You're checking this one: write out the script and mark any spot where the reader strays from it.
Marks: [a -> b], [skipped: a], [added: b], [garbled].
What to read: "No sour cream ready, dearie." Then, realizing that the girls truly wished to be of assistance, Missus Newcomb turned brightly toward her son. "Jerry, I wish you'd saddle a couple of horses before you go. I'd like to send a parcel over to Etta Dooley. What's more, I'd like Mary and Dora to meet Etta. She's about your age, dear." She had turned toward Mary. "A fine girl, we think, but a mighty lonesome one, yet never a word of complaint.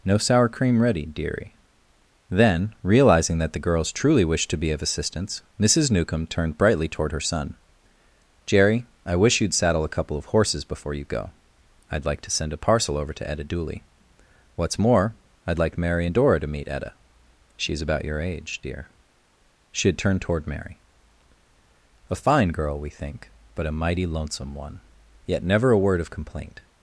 "No sour cream ready, dearie." Then, realizing that the girls truly wished to be of assistance, Missus Newcomb turned brightly toward her son. "Jerry, I wish you'd saddle a couple of horses before you go. I'd like to send a parcel over to Etta Dooley. What's more, I'd like Mary and Dora to meet Etta. She's about your age, dear." She had turned toward Mary. "A fine girl, we think, but a mighty lonesome one, yet never a word of complaint.